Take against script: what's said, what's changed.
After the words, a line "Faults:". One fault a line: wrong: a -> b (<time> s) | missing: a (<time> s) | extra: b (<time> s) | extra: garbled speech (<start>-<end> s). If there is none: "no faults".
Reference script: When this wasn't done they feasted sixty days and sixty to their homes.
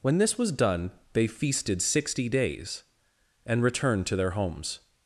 When this was done they feasted sixty days and returned to their homes.
Faults:
wrong: wasn't -> was (0.4 s)
wrong: sixty -> returned (3.6 s)